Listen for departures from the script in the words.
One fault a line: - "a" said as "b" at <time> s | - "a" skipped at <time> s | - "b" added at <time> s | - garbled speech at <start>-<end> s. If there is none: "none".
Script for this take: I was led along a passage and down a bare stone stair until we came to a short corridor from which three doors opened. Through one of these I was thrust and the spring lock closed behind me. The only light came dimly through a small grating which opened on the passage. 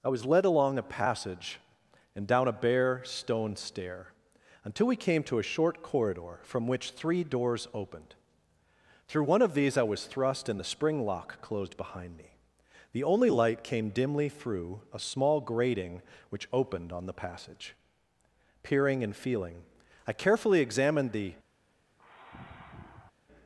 - "Peering and feeling I carefully examined the" added at 18.6 s